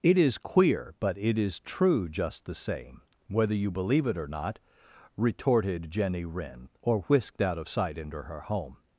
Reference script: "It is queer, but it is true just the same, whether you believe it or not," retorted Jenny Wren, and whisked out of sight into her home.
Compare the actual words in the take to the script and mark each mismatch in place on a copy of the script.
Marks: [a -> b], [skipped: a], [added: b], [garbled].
"It is queer, but it is true just the same, whether you believe it or not," retorted Jenny Wren, [and -> or] whisked out of sight into her home.